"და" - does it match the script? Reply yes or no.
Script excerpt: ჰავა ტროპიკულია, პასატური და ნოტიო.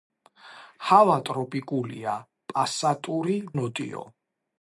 no